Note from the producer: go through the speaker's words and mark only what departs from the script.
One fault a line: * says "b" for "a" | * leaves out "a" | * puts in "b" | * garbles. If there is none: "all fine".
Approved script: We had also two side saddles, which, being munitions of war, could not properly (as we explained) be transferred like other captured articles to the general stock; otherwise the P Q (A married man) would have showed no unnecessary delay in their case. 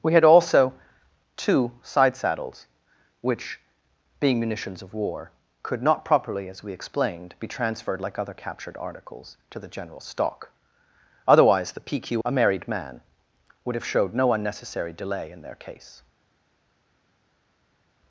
all fine